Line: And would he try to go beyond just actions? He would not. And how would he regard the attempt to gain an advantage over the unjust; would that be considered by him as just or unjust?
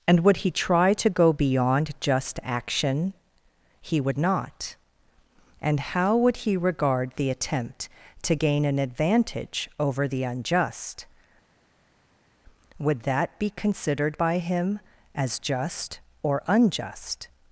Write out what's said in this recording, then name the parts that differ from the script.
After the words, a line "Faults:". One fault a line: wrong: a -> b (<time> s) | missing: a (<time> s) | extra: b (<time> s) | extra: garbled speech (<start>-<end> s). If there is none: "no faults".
And would he try to go beyond just action? He would not. And how would he regard the attempt to gain an advantage over the unjust; would that be considered by him as just or unjust?
Faults:
wrong: actions -> action (2.4 s)